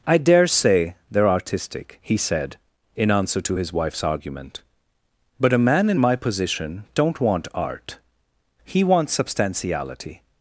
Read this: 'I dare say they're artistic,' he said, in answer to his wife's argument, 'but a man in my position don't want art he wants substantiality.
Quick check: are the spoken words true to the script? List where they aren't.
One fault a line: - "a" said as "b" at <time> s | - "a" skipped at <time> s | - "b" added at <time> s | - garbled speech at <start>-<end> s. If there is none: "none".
none